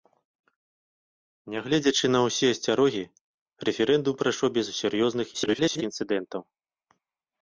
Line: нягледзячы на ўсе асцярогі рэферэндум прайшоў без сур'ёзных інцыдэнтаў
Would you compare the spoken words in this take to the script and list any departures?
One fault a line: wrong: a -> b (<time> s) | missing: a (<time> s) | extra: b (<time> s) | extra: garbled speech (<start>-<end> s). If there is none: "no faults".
extra: garbled speech (5.3-5.8 s)